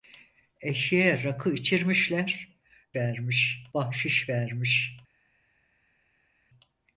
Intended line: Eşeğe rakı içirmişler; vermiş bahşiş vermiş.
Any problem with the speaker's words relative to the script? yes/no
no